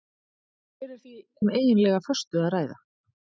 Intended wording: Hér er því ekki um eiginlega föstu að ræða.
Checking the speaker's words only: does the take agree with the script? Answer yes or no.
no